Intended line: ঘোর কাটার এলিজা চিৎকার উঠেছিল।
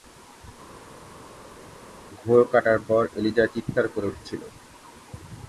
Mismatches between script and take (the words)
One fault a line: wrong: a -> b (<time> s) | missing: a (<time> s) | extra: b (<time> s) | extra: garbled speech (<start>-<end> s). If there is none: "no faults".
extra: পর (2.9 s)
extra: করে (3.9 s)